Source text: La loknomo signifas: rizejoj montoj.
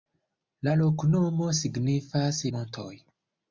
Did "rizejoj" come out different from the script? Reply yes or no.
yes